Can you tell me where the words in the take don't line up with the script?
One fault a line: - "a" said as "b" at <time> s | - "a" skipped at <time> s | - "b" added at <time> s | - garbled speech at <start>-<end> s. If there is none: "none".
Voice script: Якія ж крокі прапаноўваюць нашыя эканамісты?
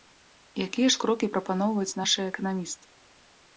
none